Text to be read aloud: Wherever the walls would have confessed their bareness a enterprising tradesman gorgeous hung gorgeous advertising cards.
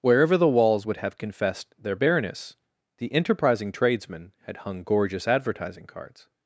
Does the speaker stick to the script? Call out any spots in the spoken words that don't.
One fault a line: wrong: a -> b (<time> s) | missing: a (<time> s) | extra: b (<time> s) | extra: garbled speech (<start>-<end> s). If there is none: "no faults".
wrong: a -> the (3.0 s)
wrong: gorgeous -> had (4.4 s)